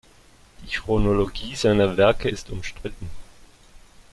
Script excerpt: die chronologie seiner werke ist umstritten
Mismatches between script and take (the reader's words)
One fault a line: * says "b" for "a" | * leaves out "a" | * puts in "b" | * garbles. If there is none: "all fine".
all fine